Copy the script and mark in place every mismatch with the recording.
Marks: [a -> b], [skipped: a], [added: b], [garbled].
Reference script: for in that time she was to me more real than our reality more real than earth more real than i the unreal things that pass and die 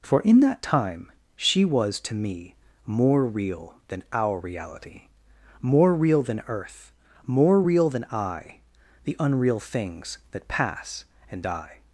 for in that time she was to me more real than our reality more real than earth more real than i the unreal things that pass and die